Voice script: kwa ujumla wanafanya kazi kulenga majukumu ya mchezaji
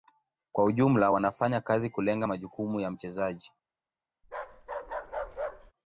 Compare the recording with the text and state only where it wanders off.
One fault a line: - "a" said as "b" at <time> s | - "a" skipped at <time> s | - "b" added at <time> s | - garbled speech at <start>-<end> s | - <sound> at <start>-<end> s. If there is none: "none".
- bark at 4.2-5.7 s